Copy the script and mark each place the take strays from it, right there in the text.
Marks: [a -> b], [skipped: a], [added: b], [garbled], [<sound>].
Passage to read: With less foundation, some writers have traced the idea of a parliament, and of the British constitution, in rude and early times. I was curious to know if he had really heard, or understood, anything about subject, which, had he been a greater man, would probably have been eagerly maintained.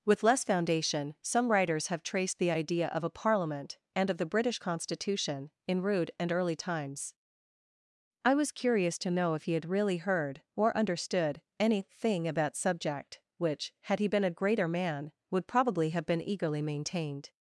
With less foundation, some writers have traced the idea of a parliament, and of the British constitution, in rude and early times. I was curious to know if he had really heard, or understood, anything about subject, which, had he been a greater man, would probably have been eagerly maintained.